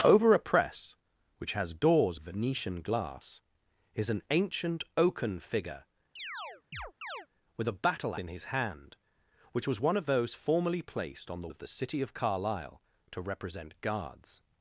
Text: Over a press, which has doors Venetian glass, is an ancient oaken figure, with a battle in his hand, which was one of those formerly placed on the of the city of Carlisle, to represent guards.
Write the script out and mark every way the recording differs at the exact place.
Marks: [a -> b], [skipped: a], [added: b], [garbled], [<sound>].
Over a press, which has doors Venetian glass, is an ancient oaken figure, [chirp] with a battle in his hand, which was one of those formerly placed on the of the city of Carlisle, to represent guards.